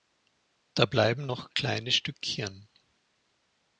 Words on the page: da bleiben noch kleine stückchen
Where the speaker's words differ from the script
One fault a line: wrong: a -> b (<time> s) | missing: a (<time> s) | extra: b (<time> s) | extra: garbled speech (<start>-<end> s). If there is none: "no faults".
no faults